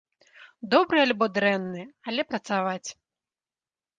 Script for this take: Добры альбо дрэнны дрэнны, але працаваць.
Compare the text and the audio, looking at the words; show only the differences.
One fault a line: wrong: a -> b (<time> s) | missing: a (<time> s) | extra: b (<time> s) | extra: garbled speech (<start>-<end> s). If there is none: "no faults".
missing: дрэнны (1.8 s)